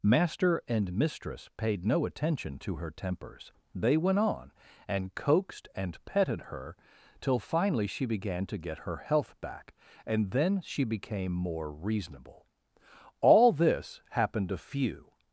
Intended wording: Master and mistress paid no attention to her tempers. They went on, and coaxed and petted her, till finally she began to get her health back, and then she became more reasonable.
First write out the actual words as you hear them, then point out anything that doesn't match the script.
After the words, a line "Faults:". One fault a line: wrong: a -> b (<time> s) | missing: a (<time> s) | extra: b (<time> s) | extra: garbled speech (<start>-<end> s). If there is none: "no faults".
Master and mistress paid no attention to her tempers. They went on, and coaxed and petted her, till finally she began to get her health back, and then she became more reasonable. All this happened a few
Faults:
extra: All this happened a few (13.2 s)